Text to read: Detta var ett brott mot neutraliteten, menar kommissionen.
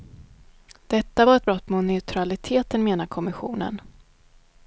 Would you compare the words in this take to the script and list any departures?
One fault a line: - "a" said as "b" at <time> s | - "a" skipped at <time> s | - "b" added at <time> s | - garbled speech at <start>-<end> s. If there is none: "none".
none